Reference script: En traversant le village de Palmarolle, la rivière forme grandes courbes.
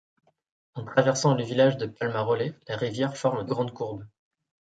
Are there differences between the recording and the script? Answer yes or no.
no